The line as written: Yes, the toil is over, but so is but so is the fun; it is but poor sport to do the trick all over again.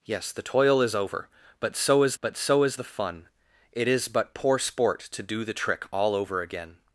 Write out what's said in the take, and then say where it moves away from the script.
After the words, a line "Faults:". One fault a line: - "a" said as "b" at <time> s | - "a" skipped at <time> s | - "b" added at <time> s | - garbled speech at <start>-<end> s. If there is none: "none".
Yes, the toil is over, but so is but so is the fun; it is but poor sport to do the trick all over again.
Faults:
none